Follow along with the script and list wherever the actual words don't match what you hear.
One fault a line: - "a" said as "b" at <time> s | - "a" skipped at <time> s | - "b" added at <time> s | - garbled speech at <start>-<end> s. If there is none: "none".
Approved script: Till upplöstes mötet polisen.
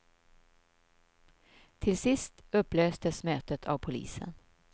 - "sist" added at 2.0 s
- "av" added at 3.6 s